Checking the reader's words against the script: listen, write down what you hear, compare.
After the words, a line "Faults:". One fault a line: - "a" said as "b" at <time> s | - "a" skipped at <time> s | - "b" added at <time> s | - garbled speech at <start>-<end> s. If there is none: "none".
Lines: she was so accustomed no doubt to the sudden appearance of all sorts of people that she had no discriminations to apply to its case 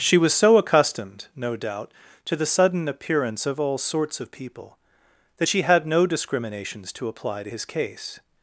she was so accustomed no doubt to the sudden appearance of all sorts of people that she had no discriminations to apply to his case
Faults:
- "its" said as "his" at 7.5 s